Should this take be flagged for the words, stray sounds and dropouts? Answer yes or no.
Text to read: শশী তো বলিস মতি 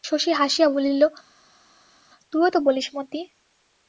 yes